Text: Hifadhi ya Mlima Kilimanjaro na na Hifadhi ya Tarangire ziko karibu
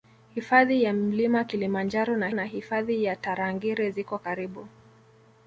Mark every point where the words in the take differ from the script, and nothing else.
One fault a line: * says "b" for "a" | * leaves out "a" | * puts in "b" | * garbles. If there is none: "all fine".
all fine